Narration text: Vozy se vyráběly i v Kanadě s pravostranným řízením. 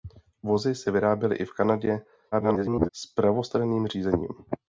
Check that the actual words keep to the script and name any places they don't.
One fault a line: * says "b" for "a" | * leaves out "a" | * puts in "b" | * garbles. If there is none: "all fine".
* garbles